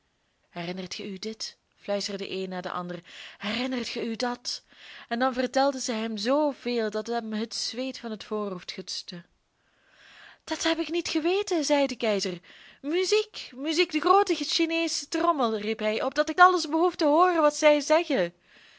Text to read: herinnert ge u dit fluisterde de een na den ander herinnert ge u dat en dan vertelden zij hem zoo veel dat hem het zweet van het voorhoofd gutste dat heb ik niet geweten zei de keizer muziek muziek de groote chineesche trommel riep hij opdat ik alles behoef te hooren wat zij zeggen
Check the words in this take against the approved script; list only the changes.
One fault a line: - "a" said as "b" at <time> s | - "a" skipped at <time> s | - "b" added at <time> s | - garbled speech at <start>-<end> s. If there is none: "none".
none